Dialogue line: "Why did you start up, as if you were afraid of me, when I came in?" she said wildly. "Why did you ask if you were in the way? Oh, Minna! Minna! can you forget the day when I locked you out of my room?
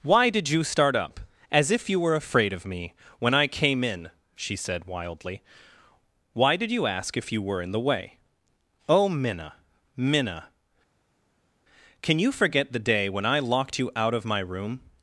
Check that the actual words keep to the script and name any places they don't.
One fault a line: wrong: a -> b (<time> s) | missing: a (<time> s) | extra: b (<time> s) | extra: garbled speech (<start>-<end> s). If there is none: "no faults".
no faults